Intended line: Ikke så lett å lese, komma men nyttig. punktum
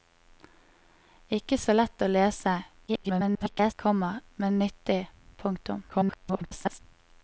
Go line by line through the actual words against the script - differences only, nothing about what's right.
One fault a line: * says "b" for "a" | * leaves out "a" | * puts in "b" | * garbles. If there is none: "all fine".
* garbles
* garbles